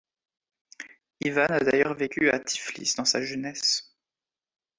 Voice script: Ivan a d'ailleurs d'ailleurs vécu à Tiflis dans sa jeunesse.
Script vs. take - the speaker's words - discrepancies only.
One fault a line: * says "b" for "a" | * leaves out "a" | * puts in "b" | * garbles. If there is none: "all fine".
* leaves out "d'ailleurs"